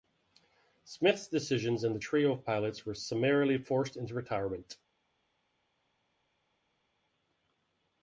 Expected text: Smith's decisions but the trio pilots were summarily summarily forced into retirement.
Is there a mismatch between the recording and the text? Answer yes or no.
yes